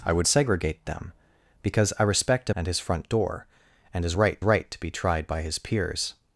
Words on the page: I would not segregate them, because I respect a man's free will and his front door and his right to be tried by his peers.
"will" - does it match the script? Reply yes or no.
no